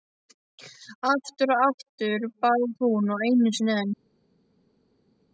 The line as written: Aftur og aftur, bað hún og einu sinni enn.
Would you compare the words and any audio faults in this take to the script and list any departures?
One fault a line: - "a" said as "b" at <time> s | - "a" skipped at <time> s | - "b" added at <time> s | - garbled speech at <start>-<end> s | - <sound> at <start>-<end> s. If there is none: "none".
none